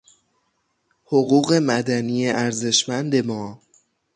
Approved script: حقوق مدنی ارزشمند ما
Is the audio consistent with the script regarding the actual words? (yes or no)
yes